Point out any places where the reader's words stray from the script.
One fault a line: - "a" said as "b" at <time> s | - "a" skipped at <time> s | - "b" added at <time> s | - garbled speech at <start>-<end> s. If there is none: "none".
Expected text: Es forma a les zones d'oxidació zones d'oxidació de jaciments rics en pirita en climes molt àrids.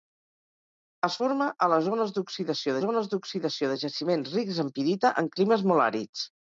none